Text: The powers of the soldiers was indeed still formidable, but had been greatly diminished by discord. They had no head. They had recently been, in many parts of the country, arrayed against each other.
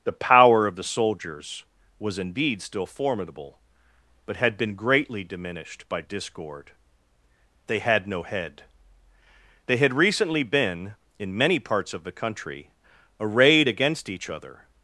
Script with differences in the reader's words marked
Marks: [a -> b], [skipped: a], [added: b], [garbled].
The [powers -> power] of the soldiers was indeed still formidable, but had been greatly diminished by discord. They had no head. They had recently been, in many parts of the country, arrayed against each other.